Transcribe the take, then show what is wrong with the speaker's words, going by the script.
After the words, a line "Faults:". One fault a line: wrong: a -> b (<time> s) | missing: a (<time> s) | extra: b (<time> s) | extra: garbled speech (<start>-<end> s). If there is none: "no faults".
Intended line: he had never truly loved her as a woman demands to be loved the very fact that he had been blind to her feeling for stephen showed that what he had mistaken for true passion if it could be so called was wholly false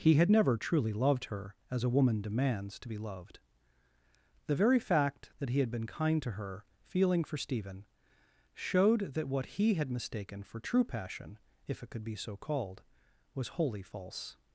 he had never truly loved her as a woman demands to be loved the very fact that he had been kind to her feeling for stephen showed that what he had mistaken for true passion if it could be so called was wholly false
Faults:
wrong: blind -> kind (5.9 s)